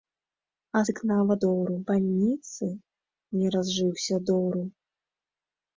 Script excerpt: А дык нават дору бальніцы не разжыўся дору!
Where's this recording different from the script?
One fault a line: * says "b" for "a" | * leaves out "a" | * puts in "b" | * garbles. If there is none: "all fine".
all fine